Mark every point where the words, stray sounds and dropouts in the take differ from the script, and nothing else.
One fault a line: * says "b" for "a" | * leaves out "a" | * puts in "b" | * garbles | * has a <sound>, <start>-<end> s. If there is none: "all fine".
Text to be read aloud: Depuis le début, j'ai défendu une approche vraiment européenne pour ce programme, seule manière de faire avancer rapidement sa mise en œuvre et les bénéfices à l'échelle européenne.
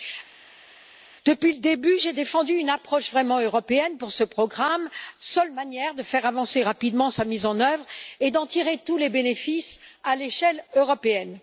* puts in "d'en tirer tous"